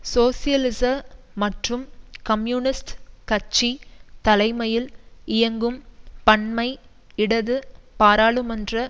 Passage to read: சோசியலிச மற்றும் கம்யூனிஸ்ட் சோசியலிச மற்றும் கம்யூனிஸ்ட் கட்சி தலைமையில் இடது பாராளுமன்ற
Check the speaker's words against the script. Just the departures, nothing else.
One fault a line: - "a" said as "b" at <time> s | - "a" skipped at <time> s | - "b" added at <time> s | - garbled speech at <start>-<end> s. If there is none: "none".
- "சோசியலிச மற்றும் கம்யூனிஸ்ட் கட்சி தலைமையில்" said as "கட்சி தலைமையில் இயங்கும் பன்மை" at 3.3 s